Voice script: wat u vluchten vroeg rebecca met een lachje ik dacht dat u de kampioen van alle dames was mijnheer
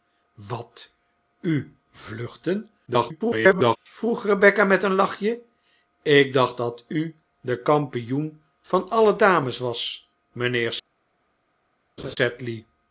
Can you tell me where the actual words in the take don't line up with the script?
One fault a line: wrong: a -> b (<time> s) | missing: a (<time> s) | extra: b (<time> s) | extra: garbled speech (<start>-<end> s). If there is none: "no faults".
extra: garbled speech (2.9-3.8 s)